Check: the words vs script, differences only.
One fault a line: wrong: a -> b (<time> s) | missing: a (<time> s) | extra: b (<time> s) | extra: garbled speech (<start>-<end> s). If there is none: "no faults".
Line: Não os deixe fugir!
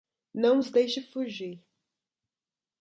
no faults